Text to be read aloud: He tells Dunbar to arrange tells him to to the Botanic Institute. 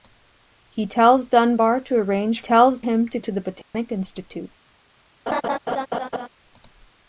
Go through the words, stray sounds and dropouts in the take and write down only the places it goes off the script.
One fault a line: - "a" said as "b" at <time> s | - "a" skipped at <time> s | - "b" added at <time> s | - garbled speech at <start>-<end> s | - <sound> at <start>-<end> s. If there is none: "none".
- dropout at 3.6-3.7 s
- laugh at 5.3-6.3 s